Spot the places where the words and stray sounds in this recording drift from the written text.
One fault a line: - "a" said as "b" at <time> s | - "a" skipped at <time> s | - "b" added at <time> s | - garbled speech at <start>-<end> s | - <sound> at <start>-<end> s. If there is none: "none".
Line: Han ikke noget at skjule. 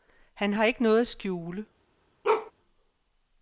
- "har" added at 0.5 s
- bark at 2.2-2.5 s